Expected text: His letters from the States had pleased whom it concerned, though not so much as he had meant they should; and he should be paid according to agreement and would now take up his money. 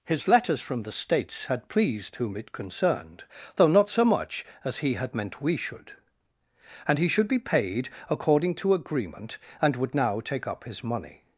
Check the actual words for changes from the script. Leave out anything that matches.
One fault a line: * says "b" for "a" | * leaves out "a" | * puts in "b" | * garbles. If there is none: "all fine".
* says "we" for "they"